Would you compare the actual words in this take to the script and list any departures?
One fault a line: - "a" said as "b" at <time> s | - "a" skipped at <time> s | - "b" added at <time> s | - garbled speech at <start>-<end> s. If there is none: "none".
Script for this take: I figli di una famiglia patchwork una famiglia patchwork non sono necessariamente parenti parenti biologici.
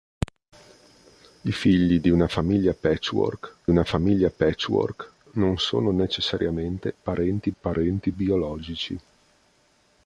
none